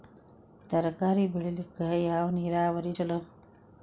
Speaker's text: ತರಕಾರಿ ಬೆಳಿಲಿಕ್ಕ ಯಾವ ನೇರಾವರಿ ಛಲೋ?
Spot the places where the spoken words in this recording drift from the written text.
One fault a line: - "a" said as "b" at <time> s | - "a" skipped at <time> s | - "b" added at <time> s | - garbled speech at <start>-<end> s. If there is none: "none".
none